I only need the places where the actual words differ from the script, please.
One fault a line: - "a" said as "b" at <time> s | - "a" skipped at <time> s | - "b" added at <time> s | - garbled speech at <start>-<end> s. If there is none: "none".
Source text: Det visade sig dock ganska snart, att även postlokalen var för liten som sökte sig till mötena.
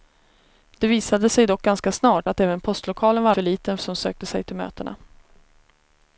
none